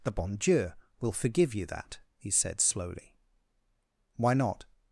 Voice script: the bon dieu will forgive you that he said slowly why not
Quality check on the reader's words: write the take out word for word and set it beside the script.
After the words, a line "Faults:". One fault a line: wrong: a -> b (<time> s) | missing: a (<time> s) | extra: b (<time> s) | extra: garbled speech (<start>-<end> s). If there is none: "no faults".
the bon dieu will forgive you that he said slowly why not
Faults:
no faults